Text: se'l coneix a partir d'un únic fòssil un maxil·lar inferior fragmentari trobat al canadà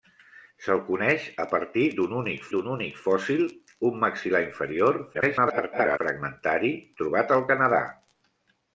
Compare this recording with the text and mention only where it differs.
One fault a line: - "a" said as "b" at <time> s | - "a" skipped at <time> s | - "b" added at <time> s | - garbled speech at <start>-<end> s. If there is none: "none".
- "d'un únic" added at 2.5 s
- garbled speech at 5.1-6.0 s